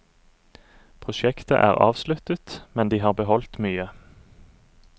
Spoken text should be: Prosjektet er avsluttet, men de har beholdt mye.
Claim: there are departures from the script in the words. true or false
false